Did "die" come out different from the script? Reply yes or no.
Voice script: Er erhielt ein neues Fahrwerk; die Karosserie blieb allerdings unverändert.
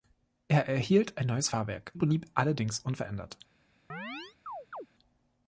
yes